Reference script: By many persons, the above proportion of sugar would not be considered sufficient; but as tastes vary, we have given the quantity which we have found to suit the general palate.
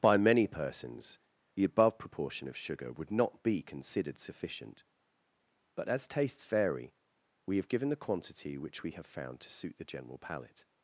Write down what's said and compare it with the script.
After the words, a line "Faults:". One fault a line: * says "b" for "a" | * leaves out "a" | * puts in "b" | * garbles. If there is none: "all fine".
By many persons, the above proportion of sugar would not be considered sufficient; but as tastes vary, we have given the quantity which we have found to suit the general palate.
Faults:
all fine